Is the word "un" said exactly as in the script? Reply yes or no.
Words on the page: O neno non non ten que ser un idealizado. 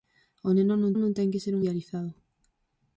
yes